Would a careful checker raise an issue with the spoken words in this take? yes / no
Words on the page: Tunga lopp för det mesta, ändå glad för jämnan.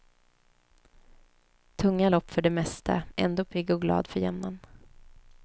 yes